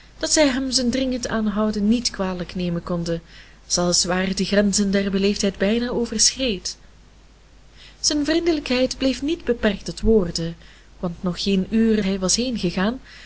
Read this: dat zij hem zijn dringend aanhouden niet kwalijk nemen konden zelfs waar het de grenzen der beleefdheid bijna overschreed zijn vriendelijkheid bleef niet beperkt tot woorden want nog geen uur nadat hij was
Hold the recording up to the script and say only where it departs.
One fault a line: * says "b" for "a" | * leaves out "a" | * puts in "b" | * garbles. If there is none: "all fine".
* leaves out "nadat"